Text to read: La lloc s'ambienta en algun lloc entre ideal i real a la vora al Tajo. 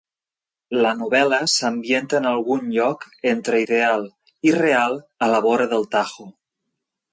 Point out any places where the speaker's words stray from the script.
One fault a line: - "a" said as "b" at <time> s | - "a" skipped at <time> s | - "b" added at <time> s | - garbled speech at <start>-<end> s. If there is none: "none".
- "lloc" said as "novel·la" at 1.0 s
- "al" said as "del" at 5.8 s